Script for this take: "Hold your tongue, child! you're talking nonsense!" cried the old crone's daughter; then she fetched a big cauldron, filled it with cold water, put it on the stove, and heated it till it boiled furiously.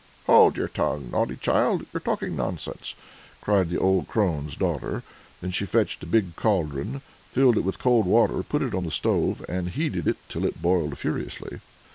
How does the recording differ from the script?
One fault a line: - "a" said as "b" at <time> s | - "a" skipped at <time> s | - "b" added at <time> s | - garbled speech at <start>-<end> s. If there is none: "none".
- "naughty" added at 1.1 s